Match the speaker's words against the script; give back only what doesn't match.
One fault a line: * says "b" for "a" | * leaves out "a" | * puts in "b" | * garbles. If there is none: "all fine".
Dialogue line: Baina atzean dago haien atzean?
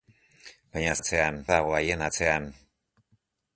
all fine